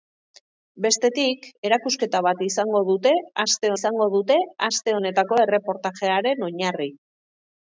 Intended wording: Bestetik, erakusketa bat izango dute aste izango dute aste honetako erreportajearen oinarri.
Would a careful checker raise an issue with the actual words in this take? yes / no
no